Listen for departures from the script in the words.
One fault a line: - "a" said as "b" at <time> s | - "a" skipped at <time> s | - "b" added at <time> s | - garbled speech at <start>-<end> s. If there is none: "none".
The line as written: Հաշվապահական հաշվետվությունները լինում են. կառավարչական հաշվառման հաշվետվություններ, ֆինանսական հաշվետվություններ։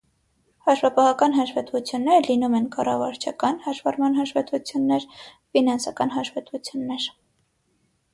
none